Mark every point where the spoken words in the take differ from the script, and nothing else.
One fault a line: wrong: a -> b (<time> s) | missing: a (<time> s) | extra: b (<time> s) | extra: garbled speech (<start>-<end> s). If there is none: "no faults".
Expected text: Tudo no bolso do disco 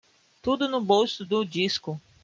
no faults